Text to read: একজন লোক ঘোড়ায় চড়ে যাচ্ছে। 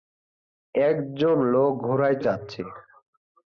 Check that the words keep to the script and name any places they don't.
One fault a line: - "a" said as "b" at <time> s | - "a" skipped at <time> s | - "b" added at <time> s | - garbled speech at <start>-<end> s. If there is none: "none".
- "চড়ে" skipped at 2.2 s